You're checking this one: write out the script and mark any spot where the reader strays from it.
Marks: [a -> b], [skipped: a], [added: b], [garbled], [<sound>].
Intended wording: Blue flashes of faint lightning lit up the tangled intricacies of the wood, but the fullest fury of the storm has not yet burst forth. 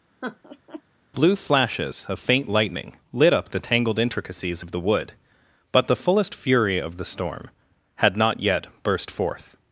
[laugh] Blue flashes of faint lightning lit up the tangled intricacies of the wood, but the fullest fury of the storm [has -> had] not yet burst forth.